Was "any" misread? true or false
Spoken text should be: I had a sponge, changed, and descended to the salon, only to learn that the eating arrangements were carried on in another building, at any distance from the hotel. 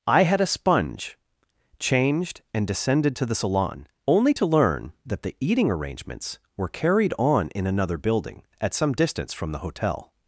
true